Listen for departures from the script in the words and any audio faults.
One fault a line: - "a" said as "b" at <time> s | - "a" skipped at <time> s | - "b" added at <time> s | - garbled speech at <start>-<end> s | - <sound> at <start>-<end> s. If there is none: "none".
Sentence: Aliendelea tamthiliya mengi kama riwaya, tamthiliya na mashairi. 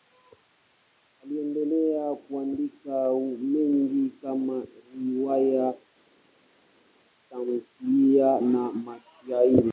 - "tamthiliya" said as "kuandika" at 2.1 s